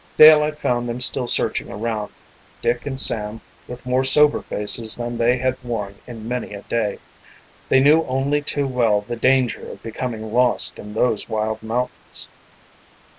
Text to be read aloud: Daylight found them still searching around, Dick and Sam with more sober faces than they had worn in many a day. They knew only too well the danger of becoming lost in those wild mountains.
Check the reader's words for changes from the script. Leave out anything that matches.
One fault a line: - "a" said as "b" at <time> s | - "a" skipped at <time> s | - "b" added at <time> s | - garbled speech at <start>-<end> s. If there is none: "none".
none